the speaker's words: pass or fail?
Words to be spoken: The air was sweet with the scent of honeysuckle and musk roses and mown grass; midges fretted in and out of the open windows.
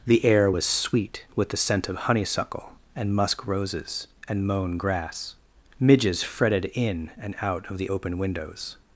pass